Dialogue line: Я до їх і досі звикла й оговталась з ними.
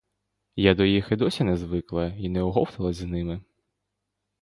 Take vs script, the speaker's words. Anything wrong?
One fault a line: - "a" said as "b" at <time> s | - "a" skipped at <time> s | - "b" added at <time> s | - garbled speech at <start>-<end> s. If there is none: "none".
- "не" added at 1.4 s
- "не" added at 2.3 s